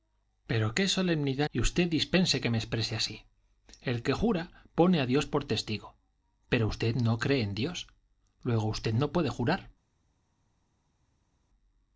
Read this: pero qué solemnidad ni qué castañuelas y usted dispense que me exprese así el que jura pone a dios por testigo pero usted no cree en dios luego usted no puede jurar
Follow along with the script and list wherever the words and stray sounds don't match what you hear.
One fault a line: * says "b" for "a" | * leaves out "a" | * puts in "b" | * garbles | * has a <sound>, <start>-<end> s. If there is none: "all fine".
* leaves out "ni qué castañuelas"